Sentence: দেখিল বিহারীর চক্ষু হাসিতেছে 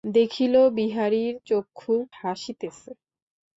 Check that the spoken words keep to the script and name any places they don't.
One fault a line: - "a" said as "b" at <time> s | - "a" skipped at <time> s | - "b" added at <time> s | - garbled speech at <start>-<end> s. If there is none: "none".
none